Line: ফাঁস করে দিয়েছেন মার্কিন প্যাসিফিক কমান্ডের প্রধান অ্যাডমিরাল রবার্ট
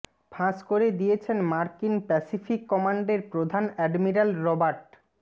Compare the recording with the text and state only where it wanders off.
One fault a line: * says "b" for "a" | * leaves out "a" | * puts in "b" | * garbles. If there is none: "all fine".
all fine